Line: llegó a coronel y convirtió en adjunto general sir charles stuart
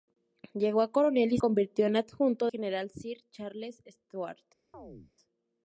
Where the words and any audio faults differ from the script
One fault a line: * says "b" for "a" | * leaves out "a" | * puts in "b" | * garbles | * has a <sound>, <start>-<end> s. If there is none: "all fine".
* has a chirp, 4.7-5.1 s